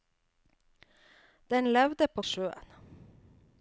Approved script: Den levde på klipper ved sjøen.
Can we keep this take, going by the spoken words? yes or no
no